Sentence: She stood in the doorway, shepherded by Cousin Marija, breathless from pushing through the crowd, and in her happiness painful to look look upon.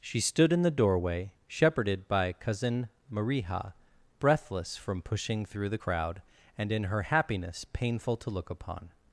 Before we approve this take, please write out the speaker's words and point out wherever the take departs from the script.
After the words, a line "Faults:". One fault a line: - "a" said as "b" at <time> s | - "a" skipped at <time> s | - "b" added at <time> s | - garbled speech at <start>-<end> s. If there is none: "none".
She stood in the doorway, shepherded by Cousin Marija, breathless from pushing through the crowd, and in her happiness painful to look upon.
Faults:
- "look" skipped at 8.5 s